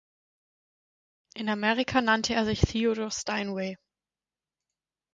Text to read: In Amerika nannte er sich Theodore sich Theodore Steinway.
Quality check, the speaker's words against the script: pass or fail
fail